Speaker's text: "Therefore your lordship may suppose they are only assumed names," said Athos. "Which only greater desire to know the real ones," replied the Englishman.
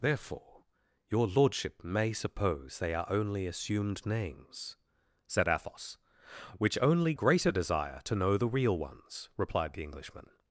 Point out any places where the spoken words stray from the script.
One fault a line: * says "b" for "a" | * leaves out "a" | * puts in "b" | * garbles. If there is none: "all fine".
all fine